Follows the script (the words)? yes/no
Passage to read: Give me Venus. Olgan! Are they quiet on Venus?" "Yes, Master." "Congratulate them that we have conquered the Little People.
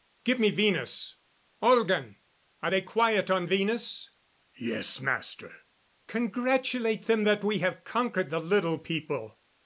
yes